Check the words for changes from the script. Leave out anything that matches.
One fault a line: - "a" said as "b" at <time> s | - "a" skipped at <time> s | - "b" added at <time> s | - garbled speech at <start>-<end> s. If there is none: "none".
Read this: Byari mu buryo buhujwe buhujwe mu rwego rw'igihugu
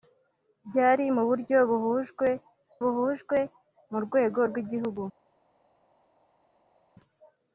none